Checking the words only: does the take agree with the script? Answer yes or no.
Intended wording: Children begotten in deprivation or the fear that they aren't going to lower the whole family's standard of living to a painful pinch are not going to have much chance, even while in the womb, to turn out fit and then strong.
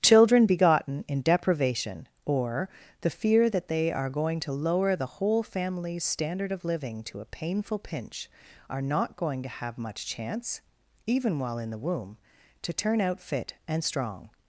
no